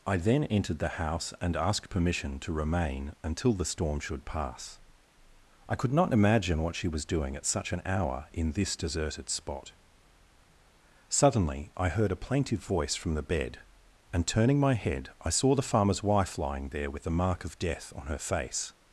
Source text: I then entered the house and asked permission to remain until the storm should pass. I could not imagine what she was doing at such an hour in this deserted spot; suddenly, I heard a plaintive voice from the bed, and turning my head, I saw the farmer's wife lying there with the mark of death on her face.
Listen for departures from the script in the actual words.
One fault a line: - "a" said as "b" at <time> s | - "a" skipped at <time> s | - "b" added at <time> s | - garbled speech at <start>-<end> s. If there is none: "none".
none